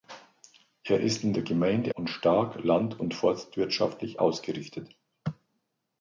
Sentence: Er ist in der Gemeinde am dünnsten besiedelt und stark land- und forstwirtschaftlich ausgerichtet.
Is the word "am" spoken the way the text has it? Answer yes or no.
no